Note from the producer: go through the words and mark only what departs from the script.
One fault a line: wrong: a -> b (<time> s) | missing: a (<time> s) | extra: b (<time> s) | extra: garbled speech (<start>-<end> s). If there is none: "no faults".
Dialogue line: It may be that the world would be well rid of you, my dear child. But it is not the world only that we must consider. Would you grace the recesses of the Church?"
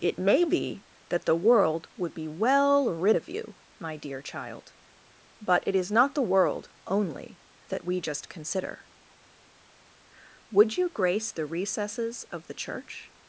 wrong: must -> just (8.0 s)